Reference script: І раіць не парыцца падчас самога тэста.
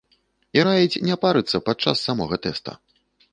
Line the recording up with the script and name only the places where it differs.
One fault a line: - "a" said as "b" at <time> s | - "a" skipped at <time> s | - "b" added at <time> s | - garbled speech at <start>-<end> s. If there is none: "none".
none